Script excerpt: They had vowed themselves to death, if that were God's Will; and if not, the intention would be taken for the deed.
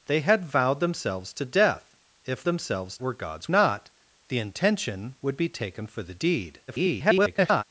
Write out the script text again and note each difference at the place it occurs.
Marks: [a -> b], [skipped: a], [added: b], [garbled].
They had vowed themselves to death, if [that -> themselves] were God's [skipped: Will; and if] not, the intention would be taken for the deed. [garbled]